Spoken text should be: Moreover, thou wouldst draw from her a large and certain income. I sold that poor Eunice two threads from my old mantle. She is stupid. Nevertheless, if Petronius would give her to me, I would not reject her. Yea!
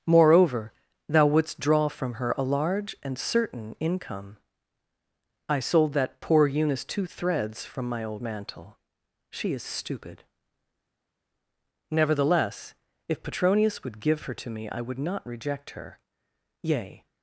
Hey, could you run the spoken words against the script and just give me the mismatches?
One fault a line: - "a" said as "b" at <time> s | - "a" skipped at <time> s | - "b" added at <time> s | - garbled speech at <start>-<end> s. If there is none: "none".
none